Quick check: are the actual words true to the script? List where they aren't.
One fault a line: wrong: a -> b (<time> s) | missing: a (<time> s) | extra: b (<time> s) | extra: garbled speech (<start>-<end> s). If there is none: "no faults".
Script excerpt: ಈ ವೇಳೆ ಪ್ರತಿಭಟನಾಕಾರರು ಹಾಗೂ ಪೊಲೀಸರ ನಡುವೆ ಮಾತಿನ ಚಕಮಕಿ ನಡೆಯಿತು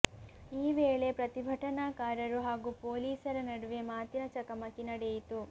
no faults